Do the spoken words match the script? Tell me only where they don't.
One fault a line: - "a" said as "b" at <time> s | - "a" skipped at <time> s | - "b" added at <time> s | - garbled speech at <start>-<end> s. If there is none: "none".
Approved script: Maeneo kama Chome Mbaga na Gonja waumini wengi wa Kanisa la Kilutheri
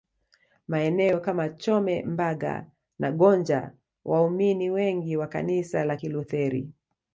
none